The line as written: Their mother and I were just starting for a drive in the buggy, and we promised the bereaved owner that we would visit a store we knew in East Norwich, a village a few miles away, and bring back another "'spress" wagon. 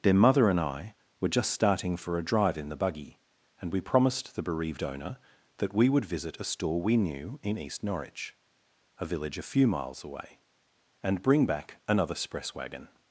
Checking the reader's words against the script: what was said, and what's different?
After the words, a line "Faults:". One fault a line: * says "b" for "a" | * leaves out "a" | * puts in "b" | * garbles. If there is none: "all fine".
Their mother and I were just starting for a drive in the buggy, and we promised the bereaved owner that we would visit a store we knew in East Norwich, a village a few miles away, and bring back another "'spress" wagon.
Faults:
all fine